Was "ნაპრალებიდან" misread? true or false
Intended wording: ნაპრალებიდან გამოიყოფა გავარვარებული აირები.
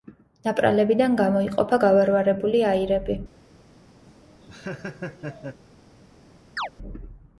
false